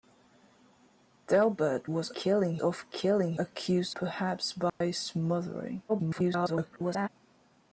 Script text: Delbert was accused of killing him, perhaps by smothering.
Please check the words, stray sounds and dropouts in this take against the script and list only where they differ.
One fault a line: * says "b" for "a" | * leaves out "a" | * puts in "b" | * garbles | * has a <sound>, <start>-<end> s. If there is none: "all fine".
* says "killing" for "accused"
* says "accused" for "him"
* has a dropout, 4.7-4.8 s
* garbles